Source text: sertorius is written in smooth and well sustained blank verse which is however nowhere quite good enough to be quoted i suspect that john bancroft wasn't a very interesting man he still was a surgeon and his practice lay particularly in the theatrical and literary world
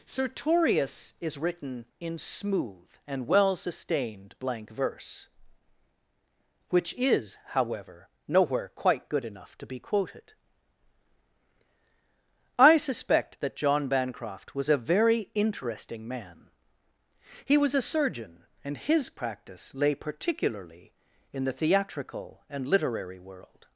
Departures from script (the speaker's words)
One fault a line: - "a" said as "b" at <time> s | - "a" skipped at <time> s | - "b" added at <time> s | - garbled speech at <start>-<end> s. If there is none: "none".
- "wasn't" said as "was" at 14.6 s
- "still" skipped at 17.6 s